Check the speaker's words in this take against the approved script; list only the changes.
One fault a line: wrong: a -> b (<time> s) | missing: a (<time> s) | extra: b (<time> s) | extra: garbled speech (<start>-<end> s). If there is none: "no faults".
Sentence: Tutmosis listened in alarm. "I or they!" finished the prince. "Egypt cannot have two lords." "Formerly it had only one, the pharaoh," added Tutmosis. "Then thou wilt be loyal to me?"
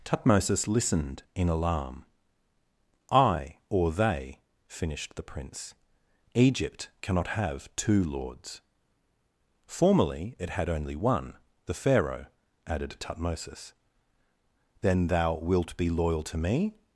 no faults